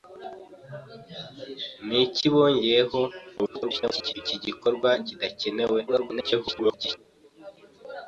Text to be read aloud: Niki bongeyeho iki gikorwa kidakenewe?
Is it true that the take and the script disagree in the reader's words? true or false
true